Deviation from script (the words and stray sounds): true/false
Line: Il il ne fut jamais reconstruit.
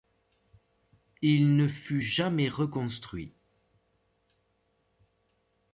true